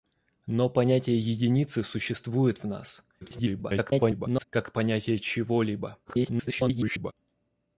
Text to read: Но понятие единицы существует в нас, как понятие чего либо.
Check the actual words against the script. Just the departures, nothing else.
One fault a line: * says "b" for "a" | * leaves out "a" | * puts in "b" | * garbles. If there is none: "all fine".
* garbles
* garbles